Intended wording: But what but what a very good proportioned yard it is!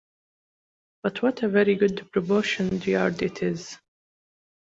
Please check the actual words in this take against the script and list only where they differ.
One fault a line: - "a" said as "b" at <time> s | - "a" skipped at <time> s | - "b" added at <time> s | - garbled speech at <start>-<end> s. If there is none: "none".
- "but what" skipped at 1.4 s